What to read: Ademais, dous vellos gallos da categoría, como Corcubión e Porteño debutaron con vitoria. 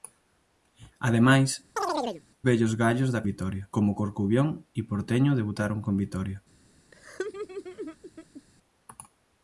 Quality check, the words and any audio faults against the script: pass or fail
fail